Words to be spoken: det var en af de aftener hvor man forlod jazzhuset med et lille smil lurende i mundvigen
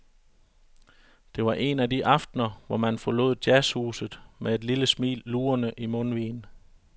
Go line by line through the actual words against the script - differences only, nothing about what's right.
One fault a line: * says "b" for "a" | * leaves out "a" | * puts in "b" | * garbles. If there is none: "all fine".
all fine